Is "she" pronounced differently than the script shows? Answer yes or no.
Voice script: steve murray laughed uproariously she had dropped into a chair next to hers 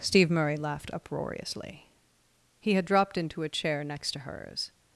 yes